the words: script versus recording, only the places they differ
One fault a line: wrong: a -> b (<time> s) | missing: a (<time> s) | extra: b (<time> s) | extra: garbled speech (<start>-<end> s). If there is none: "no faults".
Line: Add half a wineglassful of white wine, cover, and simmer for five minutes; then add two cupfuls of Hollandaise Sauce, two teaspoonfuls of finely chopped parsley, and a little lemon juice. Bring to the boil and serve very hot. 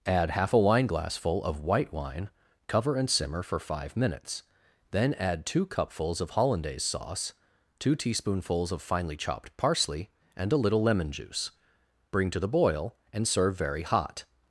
no faults